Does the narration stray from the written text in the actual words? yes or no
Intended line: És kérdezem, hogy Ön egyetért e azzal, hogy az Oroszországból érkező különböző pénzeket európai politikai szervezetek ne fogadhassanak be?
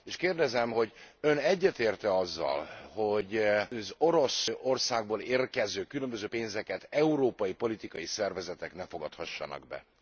no